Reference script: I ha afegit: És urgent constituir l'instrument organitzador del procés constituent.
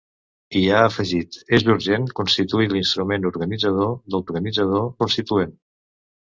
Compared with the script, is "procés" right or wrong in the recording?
wrong